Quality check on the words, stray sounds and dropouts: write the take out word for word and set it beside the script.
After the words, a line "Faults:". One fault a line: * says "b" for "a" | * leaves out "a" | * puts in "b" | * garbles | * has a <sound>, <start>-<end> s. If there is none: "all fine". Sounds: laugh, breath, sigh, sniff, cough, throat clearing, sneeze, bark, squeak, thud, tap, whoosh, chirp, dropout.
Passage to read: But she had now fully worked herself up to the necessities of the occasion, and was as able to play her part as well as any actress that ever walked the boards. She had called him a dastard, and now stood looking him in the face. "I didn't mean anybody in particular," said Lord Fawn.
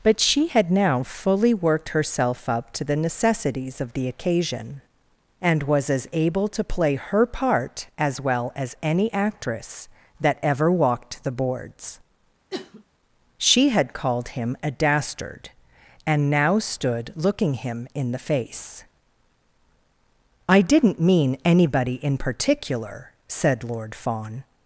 But she had now fully worked herself up to the necessities of the occasion, and was as able to play her part as well as any actress that ever walked the boards. She had called him a dastard, and now stood looking him in the face. "I didn't mean anybody in particular," said Lord Fawn.
Faults:
* has a sniff, 12.5-12.8 s